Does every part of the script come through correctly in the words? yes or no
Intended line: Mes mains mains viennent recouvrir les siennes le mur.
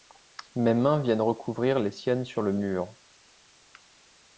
no